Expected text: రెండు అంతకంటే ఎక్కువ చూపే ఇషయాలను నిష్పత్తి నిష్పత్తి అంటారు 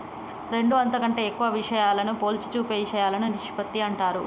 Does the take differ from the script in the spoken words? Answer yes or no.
yes